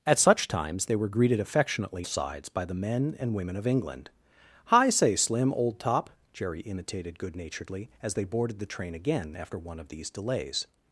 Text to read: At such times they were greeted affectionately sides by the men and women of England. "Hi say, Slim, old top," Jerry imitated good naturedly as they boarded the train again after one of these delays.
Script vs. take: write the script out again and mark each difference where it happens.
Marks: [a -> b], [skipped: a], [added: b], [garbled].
At such times they were greeted affectionately sides by the men and women of England. "Hi say, Slim, old top," Jerry imitated good naturedly as they boarded the train again after one of these delays.